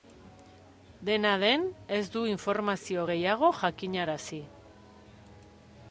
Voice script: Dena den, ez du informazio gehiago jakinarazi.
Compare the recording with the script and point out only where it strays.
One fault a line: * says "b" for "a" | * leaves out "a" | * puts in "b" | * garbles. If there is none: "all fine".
all fine